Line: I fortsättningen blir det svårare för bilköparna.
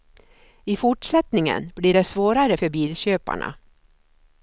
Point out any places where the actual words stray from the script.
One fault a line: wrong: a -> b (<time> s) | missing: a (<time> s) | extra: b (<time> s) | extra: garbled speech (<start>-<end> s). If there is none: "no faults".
no faults